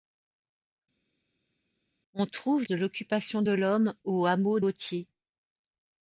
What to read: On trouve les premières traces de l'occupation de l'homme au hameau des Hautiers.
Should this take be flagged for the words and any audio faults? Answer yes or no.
yes